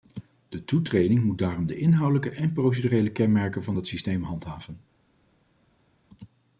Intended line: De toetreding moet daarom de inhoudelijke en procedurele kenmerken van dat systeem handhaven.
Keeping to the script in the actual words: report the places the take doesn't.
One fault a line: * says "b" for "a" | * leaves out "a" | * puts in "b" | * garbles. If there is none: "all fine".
all fine